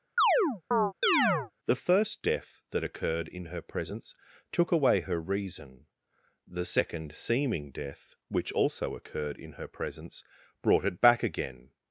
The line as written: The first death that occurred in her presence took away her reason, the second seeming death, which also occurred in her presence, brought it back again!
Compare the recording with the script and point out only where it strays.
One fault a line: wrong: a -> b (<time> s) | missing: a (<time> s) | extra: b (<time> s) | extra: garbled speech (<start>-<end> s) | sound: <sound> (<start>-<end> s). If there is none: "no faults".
sound: chirp (0.2-1.5 s)